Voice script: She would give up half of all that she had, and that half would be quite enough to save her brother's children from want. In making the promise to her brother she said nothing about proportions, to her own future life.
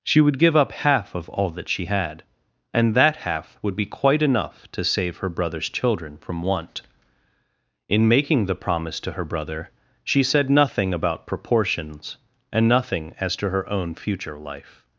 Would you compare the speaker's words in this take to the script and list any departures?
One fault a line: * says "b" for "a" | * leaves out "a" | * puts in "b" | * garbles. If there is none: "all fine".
* puts in "and nothing as"